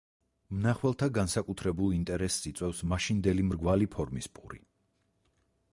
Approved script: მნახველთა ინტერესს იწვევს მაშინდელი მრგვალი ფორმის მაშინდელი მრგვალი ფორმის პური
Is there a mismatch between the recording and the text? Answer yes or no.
yes